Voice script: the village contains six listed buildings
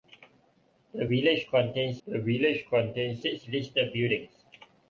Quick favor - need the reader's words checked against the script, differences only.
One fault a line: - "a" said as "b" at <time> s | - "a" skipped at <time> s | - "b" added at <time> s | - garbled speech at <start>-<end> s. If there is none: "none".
- "the village contains" added at 2.1 s